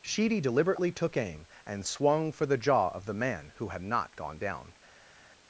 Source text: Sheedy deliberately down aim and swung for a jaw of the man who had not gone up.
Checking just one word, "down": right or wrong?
wrong